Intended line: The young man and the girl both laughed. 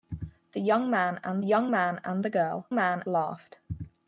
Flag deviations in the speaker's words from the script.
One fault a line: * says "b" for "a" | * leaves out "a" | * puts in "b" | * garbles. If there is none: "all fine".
* puts in "young man and"
* says "man" for "both"